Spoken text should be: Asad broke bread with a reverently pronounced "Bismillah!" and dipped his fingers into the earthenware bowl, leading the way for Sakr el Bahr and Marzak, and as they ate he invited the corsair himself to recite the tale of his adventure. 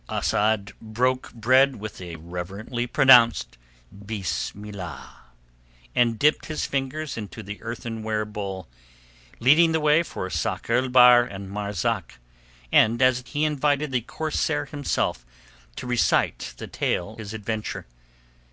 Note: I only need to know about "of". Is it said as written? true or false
false